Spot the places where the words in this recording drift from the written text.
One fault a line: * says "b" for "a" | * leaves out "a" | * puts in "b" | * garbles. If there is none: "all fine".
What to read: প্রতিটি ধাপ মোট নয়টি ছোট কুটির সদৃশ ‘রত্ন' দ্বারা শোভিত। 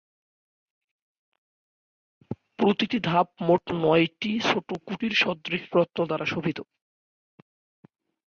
all fine